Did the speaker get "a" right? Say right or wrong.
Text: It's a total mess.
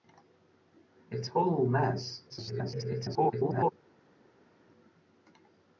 wrong